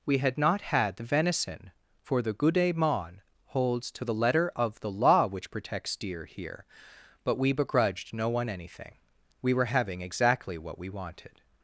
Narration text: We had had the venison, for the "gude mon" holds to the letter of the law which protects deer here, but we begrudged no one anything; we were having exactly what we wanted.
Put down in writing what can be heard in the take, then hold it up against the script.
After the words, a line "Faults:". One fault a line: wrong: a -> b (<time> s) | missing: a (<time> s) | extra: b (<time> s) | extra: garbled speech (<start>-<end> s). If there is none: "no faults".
We had not had the venison, for the "gude mon" holds to the letter of the law which protects deer here, but we begrudged no one anything; we were having exactly what we wanted.
Faults:
extra: not (0.4 s)